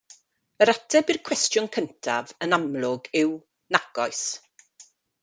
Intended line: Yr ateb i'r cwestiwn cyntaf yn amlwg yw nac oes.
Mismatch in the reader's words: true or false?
false